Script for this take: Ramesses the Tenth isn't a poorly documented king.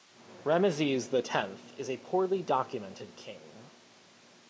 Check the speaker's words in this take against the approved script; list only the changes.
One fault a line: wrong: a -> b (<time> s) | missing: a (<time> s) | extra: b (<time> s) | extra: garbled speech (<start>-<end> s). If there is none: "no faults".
wrong: isn't -> is (1.8 s)